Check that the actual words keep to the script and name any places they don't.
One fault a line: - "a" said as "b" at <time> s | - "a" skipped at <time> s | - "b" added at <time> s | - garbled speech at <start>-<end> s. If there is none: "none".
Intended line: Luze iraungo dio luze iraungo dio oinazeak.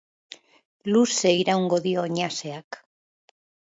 - "luze iraungo dio" skipped at 2.0 s